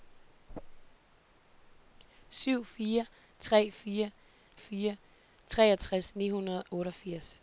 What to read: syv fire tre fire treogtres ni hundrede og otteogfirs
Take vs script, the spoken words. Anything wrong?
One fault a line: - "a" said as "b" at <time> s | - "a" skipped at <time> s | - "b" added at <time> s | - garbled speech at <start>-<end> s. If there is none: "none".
- "fire" added at 4.6 s
- "og" skipped at 6.6 s